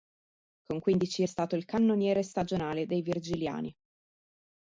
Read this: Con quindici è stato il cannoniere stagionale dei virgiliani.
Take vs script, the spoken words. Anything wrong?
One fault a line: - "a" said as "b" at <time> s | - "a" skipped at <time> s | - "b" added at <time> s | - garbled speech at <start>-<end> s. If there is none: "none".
none